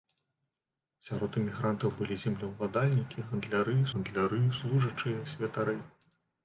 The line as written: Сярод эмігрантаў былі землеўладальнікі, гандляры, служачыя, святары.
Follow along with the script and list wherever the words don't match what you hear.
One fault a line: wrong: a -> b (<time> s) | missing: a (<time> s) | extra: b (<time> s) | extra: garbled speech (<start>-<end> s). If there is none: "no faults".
extra: гандляры (3.9 s)